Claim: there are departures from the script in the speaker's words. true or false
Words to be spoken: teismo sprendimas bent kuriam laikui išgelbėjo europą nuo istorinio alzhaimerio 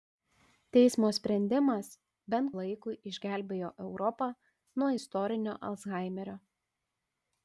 true